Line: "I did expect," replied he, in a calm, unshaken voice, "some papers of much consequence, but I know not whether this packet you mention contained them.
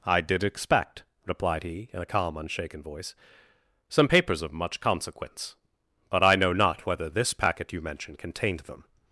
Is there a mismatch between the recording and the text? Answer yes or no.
no